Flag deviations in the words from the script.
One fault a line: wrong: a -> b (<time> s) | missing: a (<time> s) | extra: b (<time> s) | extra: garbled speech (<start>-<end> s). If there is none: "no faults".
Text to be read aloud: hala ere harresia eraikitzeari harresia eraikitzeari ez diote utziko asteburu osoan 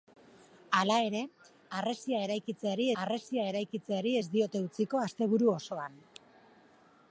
no faults